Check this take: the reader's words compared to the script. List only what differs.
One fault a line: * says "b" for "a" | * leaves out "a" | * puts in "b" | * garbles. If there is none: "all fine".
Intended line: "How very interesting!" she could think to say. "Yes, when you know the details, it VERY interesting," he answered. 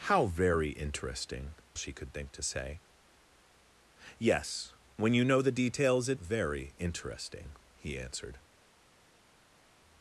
all fine